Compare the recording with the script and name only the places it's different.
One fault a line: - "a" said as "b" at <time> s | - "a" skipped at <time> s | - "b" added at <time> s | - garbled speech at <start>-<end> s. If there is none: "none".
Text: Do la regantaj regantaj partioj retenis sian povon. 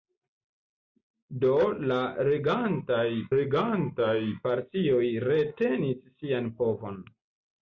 none